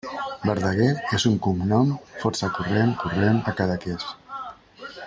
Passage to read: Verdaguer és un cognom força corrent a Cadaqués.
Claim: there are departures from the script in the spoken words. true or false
true